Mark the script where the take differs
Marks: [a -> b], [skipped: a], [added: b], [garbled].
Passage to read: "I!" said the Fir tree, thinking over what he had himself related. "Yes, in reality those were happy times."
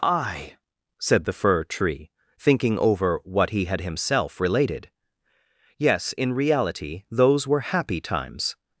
"I!" said the Fir tree, thinking over what he had himself related. "Yes, in reality those were happy times."